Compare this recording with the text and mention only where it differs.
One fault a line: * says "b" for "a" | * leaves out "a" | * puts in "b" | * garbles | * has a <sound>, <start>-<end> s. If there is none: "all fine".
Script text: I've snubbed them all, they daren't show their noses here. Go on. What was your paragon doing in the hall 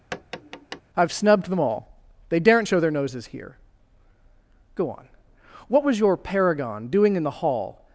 * has a tap, 0.1-0.8 s